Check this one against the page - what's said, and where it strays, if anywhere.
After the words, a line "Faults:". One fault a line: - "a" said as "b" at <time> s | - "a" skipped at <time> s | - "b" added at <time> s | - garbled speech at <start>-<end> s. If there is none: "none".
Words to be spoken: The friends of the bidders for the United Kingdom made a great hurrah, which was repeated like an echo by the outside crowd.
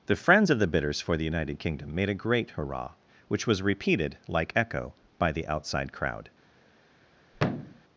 The friends of the bidders for the United Kingdom made a great hurrah, which was repeated like echo by the outside crowd.
Faults:
- "an" skipped at 4.5 s